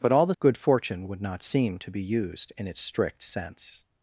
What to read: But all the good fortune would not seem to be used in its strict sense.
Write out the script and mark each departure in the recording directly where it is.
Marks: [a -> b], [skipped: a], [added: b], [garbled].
But all the good fortune would not seem to be used in its strict sense.